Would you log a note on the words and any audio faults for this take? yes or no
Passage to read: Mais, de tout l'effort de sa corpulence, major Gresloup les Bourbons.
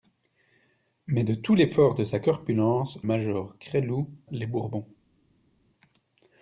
no